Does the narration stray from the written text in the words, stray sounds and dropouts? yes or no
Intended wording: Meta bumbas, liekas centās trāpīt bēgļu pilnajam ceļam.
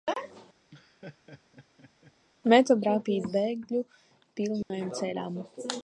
yes